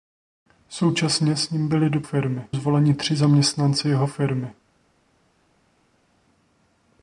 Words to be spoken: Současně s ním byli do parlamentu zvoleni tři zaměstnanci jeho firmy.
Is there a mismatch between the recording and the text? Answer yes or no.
yes